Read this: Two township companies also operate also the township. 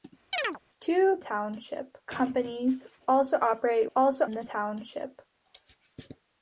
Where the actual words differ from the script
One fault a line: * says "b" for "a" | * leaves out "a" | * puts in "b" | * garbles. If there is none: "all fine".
all fine